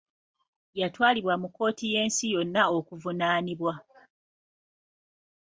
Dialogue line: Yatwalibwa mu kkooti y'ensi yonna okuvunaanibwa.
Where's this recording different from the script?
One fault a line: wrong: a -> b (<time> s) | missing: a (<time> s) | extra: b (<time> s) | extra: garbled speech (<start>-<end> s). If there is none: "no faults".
no faults